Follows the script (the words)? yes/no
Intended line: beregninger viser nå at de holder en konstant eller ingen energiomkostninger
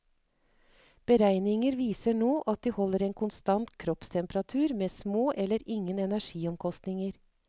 no